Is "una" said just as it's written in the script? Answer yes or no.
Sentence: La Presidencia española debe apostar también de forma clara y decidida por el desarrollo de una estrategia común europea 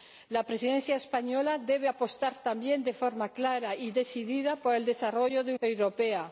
no